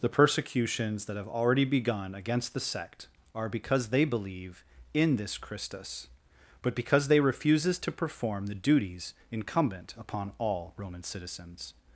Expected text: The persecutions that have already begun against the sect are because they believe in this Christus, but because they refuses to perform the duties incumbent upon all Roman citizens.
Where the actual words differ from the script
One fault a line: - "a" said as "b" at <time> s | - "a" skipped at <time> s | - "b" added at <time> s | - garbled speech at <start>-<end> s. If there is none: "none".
none